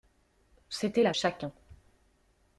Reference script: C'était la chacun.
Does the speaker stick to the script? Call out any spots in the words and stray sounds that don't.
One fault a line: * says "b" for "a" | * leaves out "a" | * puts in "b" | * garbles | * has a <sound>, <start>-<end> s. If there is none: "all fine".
all fine